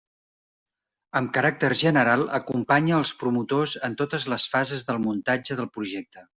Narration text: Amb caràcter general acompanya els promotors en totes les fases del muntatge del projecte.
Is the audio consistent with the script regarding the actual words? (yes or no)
yes